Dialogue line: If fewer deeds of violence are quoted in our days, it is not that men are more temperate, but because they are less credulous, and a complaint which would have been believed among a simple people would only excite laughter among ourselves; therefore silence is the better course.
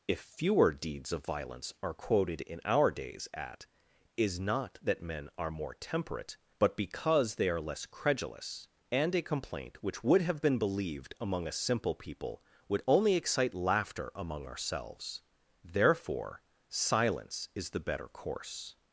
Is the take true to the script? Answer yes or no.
no